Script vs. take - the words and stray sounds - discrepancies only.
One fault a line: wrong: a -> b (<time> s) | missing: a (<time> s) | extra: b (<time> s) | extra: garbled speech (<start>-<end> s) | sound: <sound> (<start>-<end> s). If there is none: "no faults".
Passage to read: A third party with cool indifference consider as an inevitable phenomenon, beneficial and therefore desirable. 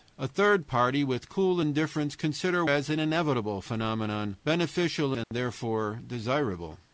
sound: dropout (5.2-5.3 s)